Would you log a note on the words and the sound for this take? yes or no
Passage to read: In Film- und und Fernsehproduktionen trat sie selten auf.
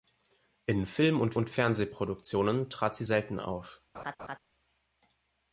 yes